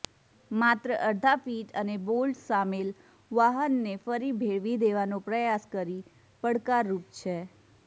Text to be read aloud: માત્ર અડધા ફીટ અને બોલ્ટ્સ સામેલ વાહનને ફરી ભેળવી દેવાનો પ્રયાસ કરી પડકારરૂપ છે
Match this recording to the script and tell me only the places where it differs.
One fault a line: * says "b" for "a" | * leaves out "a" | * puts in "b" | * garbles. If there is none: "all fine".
all fine